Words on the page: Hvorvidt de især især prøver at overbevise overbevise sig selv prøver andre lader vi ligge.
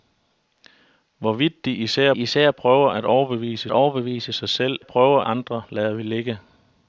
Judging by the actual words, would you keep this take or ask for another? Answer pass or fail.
pass